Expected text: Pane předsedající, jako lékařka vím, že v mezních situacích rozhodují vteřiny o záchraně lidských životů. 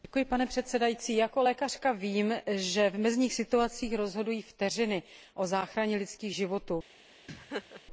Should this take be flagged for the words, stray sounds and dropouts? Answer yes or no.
yes